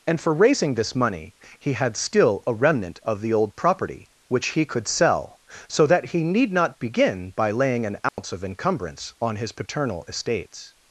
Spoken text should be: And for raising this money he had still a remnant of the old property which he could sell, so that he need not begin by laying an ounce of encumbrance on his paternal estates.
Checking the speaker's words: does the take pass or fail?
pass